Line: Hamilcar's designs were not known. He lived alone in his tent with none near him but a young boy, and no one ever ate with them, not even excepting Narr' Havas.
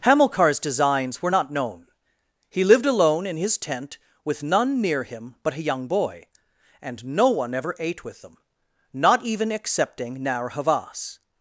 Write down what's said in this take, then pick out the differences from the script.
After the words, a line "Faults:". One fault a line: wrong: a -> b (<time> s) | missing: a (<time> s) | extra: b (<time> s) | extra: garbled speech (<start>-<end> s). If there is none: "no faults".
Hamilcar's designs were not known. He lived alone in his tent with none near him but a young boy, and no one ever ate with them, not even excepting Narr' Havas.
Faults:
no faults